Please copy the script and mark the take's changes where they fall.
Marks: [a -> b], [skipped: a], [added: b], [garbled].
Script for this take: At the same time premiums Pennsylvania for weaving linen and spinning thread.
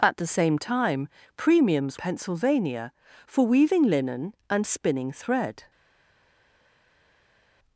At the same time premiums Pennsylvania for weaving linen and spinning thread.